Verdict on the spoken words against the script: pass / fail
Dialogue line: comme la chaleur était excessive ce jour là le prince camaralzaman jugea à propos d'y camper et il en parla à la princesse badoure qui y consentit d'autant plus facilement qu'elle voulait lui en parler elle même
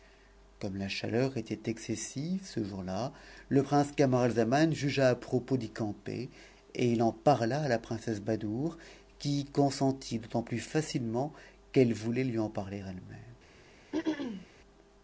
pass